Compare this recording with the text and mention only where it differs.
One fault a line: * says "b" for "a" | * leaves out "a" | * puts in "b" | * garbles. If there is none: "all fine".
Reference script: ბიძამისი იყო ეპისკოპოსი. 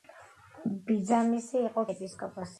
all fine